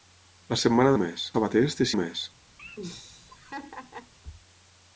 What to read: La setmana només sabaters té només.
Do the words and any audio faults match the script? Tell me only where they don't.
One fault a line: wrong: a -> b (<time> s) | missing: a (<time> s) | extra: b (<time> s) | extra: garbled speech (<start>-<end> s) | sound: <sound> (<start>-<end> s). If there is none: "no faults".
sound: laugh (2.6-4.1 s)